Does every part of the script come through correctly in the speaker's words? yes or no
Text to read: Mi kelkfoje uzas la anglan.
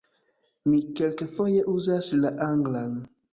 yes